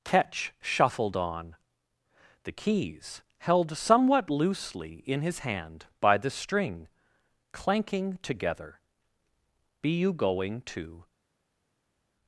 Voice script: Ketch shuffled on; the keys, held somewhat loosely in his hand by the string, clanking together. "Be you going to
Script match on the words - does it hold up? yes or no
yes